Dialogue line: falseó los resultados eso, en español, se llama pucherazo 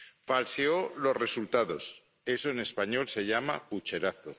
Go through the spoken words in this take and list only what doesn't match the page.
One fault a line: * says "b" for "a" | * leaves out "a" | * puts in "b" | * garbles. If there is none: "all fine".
all fine